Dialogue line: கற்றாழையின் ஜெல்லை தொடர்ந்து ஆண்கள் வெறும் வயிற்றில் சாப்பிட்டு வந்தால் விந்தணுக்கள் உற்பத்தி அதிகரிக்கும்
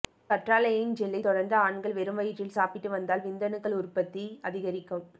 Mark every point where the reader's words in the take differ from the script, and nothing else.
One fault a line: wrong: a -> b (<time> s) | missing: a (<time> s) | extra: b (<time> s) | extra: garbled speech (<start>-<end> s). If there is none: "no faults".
no faults